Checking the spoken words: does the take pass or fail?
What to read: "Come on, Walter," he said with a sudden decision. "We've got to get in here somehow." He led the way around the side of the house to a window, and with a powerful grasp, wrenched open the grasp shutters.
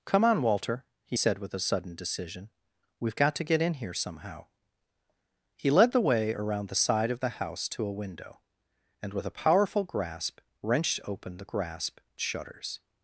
pass